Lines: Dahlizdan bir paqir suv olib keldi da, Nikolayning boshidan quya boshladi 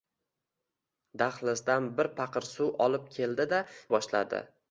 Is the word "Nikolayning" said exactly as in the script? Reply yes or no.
no